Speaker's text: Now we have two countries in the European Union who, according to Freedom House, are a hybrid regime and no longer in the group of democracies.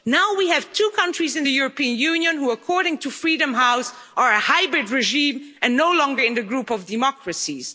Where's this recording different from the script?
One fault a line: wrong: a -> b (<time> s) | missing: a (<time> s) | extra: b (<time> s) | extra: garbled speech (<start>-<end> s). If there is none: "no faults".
no faults